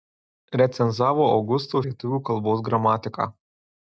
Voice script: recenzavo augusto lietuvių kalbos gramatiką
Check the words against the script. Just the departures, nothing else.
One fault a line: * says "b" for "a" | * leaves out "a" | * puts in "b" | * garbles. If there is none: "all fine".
all fine